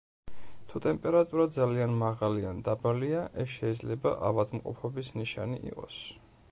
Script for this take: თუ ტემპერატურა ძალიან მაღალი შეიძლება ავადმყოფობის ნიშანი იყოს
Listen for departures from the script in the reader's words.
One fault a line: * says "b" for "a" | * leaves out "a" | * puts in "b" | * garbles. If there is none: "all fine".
* puts in "ან დაბალია ეს"